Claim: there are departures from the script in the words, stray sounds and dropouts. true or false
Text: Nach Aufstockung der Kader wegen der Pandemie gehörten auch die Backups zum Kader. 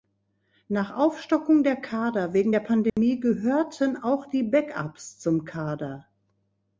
true